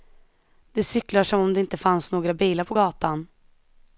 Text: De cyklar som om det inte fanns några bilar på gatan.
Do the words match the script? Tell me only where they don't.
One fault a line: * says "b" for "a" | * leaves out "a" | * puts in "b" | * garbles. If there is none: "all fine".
all fine